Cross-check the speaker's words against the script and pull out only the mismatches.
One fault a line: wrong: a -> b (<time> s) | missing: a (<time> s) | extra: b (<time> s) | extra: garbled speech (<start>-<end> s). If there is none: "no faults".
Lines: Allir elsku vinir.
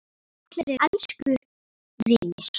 no faults